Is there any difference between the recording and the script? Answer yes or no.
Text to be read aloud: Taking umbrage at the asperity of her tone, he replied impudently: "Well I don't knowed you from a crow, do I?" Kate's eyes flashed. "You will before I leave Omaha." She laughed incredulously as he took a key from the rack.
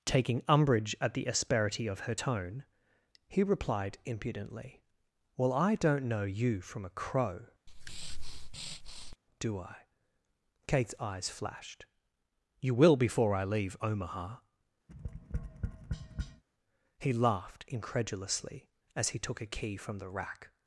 yes